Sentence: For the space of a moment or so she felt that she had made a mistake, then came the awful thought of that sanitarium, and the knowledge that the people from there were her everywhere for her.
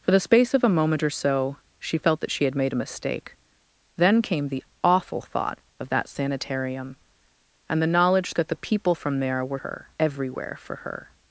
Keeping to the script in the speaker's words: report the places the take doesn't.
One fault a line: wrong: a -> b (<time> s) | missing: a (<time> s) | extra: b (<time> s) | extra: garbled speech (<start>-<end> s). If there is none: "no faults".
no faults